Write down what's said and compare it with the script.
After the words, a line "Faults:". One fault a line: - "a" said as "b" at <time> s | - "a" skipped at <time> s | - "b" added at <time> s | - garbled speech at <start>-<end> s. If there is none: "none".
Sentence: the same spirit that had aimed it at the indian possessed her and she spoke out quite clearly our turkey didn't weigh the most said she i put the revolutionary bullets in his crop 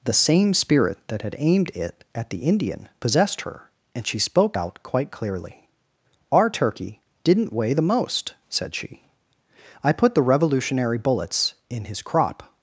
the same spirit that had aimed it at the indian possessed her and she spoke out quite clearly our turkey didn't weigh the most said she i put the revolutionary bullets in his crop
Faults:
none